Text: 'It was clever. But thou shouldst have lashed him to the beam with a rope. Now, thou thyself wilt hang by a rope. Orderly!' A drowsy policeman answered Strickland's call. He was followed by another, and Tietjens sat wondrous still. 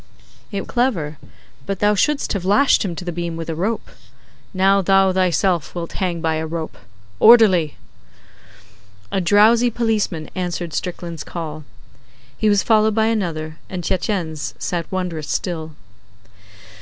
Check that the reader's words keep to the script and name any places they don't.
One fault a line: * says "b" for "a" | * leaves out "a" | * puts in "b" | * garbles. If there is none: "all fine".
* leaves out "was"